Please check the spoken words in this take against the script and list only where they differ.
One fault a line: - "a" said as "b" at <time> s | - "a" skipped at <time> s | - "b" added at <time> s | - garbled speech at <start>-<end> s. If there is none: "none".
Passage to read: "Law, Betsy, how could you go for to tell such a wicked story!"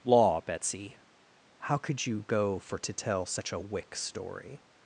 - "wicked" said as "wick" at 3.6 s